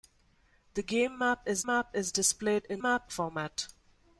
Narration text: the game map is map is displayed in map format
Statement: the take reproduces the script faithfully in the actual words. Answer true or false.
true